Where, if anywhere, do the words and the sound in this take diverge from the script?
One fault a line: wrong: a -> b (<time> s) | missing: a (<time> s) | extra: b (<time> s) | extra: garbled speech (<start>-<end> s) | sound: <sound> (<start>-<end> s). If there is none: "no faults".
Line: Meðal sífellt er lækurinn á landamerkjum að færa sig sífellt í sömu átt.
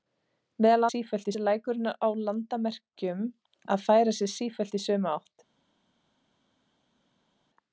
no faults